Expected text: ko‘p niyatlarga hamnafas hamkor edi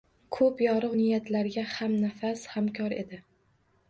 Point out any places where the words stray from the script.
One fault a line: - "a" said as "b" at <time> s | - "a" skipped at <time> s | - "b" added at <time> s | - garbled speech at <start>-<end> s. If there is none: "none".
- "yorug" added at 0.6 s